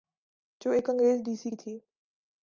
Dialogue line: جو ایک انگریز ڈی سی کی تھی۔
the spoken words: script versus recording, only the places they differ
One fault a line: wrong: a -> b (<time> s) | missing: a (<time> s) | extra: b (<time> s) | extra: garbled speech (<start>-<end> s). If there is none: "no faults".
no faults